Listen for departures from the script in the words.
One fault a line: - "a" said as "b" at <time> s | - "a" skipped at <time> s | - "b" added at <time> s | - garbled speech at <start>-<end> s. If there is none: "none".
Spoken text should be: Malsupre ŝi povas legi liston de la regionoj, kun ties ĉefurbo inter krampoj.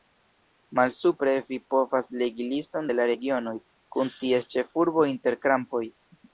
- "ŝi" said as "vi" at 1.5 s